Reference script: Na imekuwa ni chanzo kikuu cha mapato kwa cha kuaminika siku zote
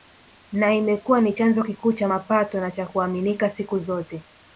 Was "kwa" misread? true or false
true